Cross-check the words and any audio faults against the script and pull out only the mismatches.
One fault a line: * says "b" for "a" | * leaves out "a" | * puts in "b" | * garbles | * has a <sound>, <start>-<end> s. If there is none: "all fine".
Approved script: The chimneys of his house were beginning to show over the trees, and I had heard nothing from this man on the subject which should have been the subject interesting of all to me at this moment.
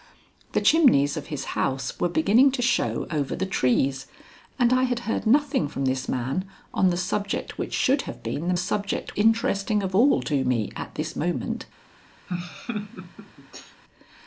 * has a laugh, 12.3-13.8 s